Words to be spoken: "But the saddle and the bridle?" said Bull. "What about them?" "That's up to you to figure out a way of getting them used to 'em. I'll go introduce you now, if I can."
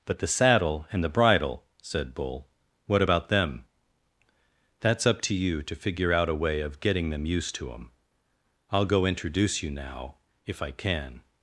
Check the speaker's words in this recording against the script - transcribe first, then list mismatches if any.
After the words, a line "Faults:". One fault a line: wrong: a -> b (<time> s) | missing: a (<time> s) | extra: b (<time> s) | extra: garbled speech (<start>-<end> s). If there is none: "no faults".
"But the saddle and the bridle?" said Bull. "What about them?" "That's up to you to figure out a way of getting them used to 'em. I'll go introduce you now, if I can."
Faults:
no faults